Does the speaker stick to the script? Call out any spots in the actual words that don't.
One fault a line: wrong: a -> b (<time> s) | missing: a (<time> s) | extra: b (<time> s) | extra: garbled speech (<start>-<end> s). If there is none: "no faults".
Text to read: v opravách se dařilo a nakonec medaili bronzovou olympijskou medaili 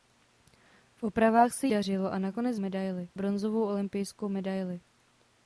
no faults